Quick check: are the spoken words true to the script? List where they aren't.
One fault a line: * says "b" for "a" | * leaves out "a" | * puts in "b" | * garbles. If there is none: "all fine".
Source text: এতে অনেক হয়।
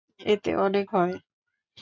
all fine